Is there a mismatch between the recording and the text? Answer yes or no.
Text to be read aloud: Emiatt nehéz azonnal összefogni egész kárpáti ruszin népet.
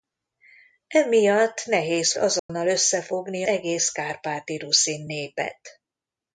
no